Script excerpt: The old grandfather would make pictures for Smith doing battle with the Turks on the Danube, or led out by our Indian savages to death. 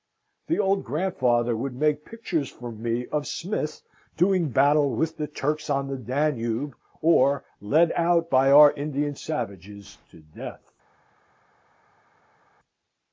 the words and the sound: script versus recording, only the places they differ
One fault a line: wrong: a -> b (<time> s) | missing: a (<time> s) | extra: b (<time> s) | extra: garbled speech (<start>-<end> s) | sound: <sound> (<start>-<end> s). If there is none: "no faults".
extra: me of (2.7 s)